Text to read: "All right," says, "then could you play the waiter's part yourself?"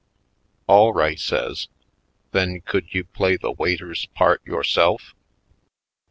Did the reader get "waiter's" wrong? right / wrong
right